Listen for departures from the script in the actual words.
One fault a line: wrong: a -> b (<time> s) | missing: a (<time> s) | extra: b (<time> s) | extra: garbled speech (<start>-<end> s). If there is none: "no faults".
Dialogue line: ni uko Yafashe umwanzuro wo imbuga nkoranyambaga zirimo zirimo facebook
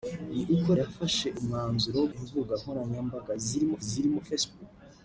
no faults